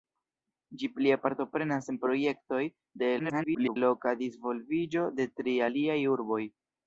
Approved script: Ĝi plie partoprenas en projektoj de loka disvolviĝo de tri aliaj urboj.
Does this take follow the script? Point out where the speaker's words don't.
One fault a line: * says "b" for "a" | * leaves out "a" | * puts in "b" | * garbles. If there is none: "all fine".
* garbles